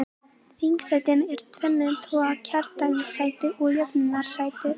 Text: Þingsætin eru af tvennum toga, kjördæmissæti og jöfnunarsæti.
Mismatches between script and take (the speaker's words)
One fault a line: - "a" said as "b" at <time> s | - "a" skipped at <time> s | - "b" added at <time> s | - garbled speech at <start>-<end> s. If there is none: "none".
none